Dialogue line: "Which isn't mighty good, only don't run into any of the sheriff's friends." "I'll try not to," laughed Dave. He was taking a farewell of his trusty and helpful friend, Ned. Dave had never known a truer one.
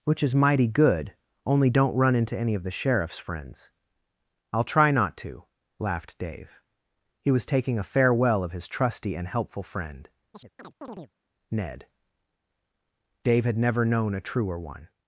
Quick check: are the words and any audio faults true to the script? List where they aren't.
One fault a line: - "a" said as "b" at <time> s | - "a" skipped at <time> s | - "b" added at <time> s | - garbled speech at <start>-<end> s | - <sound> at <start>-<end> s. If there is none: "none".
- "isn't" said as "is" at 0.2 s
- chirp at 10.3-11.1 s